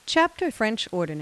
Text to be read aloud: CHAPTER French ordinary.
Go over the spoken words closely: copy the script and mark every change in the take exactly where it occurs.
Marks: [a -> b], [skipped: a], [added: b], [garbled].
CHAPTER French ordinary.